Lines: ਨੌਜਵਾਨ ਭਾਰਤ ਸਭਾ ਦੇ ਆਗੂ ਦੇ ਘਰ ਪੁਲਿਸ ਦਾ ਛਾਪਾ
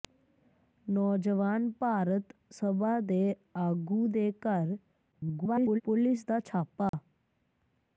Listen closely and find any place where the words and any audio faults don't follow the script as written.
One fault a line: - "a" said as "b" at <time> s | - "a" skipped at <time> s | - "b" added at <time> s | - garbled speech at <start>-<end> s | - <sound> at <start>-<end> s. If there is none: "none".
- garbled speech at 5.1-5.8 s
- dropout at 6.9-6.9 s